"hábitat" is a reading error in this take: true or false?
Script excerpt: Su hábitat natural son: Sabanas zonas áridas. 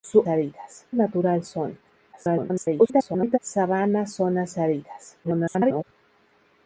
true